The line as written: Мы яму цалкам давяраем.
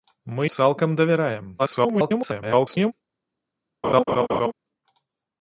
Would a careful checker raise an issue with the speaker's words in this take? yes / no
yes